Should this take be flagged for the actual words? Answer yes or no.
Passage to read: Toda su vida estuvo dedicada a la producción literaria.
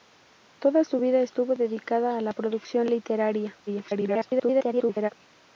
yes